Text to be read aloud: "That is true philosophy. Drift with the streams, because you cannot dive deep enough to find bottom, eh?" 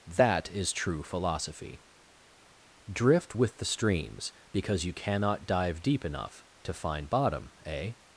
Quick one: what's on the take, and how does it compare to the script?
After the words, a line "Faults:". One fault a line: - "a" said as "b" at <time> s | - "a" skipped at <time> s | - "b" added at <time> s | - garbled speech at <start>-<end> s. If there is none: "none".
"That is true philosophy. Drift with the streams, because you cannot dive deep enough to find bottom, eh?"
Faults:
none